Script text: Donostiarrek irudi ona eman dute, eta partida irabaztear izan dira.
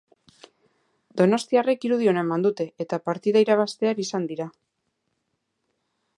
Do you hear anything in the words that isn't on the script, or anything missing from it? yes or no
no